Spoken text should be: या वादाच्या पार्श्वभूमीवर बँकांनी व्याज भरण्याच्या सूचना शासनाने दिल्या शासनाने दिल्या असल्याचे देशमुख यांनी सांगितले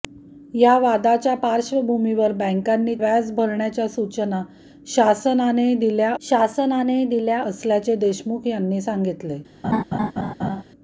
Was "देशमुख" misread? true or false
false